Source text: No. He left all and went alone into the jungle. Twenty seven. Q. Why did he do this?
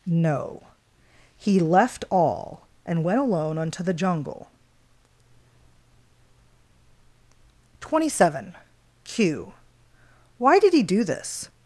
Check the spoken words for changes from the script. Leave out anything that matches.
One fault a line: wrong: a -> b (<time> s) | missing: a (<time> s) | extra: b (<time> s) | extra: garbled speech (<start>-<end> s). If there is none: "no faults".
wrong: into -> unto (3.6 s)